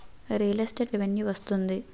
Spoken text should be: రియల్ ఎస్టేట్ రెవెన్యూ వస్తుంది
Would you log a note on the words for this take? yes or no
no